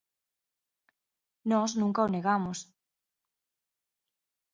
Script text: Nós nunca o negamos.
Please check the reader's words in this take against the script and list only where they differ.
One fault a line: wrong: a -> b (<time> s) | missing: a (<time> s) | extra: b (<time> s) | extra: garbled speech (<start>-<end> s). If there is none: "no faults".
no faults